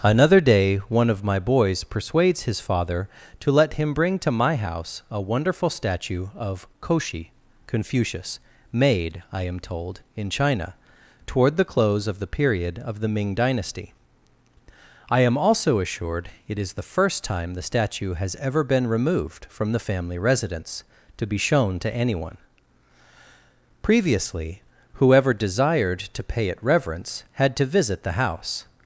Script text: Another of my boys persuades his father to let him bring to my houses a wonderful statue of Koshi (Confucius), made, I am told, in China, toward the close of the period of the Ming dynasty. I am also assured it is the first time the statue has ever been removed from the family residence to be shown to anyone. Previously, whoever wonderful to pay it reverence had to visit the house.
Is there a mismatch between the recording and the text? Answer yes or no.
yes